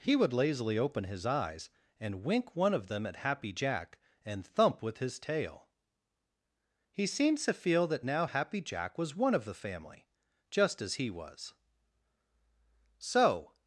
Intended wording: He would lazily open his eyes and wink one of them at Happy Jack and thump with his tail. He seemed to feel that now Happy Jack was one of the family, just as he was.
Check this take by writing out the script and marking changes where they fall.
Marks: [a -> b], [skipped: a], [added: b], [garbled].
He would lazily open his eyes and wink one of them at Happy Jack and thump with his tail. He seemed to feel that now Happy Jack was one of the family, just as he was. [added: So]